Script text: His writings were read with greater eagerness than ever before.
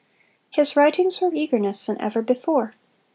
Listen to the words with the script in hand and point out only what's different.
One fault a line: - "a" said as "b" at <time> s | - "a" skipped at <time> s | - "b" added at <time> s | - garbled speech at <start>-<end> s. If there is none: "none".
- "read with greater" skipped at 1.3 s